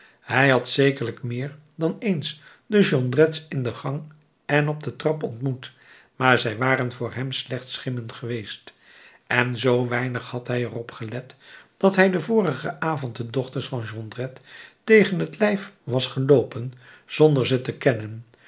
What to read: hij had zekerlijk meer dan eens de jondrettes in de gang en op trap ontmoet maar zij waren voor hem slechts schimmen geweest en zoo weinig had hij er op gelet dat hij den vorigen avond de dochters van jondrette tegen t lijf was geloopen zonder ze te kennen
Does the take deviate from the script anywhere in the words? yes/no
yes